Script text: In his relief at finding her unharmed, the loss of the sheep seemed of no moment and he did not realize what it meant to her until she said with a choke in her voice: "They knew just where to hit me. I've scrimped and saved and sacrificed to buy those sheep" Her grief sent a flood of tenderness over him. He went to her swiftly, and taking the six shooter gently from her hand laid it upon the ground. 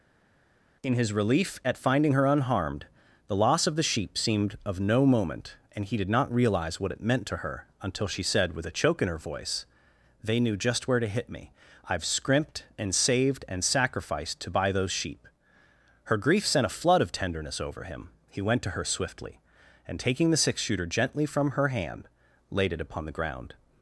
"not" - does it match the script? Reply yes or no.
yes